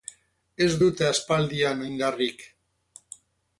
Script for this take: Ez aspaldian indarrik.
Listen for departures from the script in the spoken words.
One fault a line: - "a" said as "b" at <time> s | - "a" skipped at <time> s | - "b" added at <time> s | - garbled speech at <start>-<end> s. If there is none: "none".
- "dute" added at 0.8 s